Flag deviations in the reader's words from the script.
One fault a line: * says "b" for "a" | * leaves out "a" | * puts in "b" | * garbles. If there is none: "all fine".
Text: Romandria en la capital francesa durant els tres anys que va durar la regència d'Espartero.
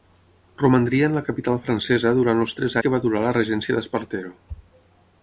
* leaves out "anys"